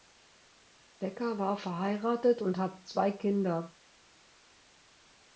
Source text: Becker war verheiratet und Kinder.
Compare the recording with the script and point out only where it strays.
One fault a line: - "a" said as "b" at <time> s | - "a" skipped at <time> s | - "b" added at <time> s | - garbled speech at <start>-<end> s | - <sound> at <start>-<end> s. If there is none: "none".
- "hat zwei" added at 2.6 s